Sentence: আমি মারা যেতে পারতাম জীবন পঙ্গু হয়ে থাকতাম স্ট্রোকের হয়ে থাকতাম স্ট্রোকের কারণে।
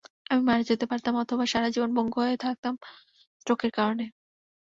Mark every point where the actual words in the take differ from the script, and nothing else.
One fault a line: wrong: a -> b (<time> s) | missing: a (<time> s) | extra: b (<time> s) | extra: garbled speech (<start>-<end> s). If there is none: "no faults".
extra: অথবা সারা (1.2 s)
missing: হয়ে থাকতাম স্ট্রোকের (3.7 s)